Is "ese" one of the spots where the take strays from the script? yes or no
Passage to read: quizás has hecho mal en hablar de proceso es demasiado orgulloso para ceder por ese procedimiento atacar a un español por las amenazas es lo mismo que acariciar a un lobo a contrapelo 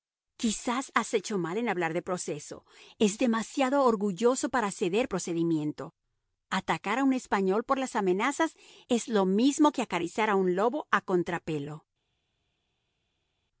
yes